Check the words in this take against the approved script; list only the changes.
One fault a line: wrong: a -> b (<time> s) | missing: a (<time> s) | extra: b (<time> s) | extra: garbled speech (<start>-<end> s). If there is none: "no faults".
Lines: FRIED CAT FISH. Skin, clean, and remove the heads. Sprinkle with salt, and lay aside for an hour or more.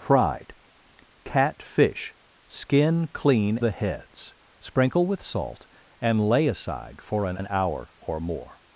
missing: and remove (3.6 s)
extra: an (7.4 s)